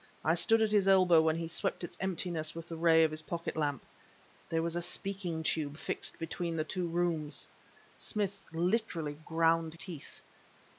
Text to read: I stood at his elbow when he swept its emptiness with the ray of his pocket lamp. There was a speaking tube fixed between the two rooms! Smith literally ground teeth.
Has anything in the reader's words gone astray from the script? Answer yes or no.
no